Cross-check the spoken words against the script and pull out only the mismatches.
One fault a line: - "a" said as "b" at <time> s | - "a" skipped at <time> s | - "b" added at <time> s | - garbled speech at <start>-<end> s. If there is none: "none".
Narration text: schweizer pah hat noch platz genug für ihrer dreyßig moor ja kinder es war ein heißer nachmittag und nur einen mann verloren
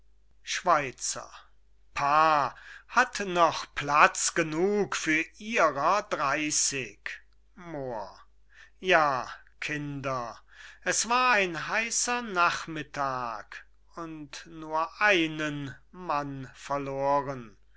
none